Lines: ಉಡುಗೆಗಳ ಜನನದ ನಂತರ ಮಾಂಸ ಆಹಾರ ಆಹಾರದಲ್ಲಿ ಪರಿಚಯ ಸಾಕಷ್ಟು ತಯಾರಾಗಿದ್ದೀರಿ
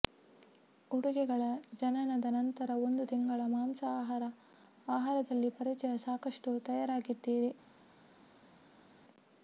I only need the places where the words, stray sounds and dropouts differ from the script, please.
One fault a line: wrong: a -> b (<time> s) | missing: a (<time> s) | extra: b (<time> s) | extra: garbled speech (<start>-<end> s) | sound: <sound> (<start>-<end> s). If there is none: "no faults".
extra: ಒಂದು ತಿಂಗಳ (2.8 s)